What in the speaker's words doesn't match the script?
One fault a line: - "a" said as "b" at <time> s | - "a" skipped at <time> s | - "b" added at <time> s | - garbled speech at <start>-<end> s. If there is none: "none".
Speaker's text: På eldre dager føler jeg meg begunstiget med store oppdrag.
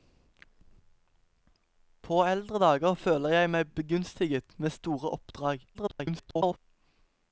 - garbled speech at 5.7-6.6 s